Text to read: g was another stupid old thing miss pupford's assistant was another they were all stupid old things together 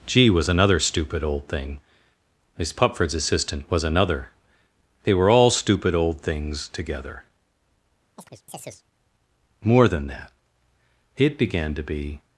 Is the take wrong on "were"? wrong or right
right